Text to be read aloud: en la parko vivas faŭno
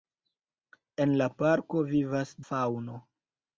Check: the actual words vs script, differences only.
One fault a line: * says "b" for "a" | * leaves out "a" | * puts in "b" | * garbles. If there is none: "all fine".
all fine